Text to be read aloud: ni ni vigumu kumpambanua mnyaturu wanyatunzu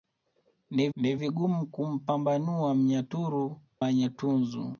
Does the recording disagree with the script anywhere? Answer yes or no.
no